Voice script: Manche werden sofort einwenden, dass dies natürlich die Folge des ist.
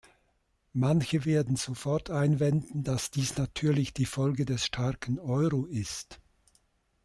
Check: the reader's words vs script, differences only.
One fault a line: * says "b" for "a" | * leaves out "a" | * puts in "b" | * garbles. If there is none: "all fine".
* puts in "starken Euro"